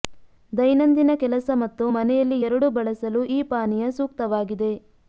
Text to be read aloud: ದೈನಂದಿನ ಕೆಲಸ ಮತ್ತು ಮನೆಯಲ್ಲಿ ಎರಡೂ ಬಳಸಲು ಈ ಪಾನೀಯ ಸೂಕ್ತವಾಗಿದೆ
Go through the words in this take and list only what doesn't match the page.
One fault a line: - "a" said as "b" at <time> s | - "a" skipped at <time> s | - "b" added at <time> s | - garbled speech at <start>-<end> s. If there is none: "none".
none